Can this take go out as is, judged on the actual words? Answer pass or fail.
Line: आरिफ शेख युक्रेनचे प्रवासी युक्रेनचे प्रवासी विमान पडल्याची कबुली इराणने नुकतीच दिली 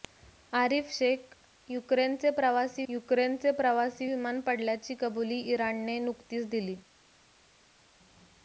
pass